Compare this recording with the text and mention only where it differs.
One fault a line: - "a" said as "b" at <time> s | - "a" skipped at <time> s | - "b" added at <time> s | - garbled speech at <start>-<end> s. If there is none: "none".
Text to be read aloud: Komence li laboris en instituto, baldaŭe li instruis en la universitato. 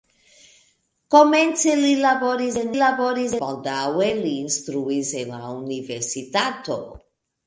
- "instituto" said as "laboris" at 2.8 s